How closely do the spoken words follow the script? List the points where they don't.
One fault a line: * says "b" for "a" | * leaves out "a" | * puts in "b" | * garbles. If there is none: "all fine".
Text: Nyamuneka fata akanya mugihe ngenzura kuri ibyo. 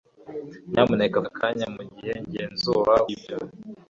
* leaves out "fata"
* leaves out "kuri"